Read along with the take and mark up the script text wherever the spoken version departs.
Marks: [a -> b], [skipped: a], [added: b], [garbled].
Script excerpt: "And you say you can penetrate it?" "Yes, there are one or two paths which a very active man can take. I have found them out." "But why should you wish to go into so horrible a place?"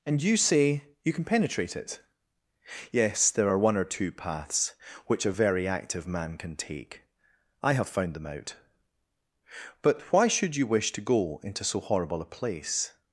"And you say you can penetrate it?" "Yes, there are one or two paths which a very active man can take. I have found them out." "But why should you wish to go into so horrible a place?"